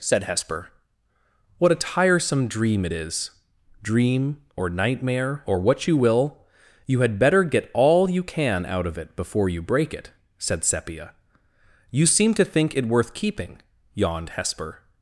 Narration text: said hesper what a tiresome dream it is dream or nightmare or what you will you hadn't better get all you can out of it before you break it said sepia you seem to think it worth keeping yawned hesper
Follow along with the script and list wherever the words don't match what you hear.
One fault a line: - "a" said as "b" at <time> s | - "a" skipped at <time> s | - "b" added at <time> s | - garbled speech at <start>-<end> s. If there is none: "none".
- "hadn't" said as "had" at 7.0 s